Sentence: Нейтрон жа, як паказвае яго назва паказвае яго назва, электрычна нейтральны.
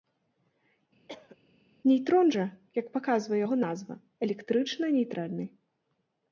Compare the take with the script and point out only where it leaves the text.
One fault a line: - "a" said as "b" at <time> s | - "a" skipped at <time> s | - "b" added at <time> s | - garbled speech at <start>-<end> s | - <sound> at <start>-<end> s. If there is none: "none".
- cough at 1.1-1.4 s
- "паказвае яго назва" skipped at 3.9 s